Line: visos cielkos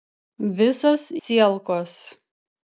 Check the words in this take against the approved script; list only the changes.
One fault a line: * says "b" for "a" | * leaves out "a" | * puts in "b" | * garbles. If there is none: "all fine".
all fine